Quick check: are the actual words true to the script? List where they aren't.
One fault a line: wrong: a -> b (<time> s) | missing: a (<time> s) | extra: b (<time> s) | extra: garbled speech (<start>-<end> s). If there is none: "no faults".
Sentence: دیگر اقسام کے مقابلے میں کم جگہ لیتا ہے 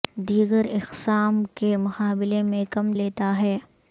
missing: جگہ (2.9 s)